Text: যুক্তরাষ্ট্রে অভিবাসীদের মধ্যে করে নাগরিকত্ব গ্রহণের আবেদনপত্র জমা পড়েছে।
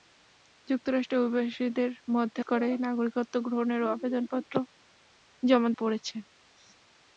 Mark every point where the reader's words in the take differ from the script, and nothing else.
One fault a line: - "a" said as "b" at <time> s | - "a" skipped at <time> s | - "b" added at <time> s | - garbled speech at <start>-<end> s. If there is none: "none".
none